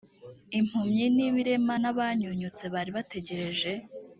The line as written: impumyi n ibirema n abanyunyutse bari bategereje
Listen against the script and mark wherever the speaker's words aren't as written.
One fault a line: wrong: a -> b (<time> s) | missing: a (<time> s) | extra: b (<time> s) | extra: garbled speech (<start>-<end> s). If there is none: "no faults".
no faults